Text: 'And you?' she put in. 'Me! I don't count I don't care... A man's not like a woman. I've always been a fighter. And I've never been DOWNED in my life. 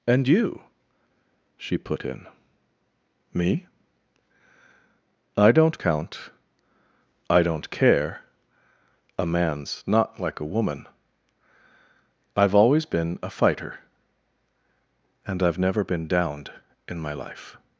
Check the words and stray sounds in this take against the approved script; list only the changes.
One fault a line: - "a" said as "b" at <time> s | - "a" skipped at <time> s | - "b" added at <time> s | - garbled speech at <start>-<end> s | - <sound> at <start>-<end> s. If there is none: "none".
none